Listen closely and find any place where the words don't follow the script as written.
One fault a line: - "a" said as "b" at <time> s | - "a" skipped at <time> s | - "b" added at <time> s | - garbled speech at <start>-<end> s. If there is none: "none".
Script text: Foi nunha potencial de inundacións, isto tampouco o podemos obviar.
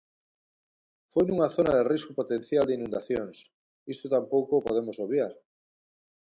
- "zona de risco" added at 1.6 s